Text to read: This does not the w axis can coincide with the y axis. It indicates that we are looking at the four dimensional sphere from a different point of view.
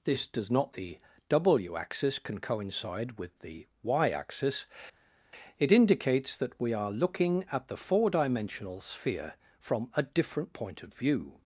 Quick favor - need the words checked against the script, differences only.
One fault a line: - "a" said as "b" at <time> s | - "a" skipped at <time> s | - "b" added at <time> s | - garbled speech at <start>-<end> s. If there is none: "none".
none